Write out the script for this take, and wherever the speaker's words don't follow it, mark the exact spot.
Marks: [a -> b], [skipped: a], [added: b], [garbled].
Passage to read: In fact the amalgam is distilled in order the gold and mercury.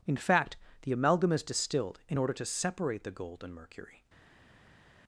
In fact the amalgam is distilled in order [added: to separate] the gold and mercury.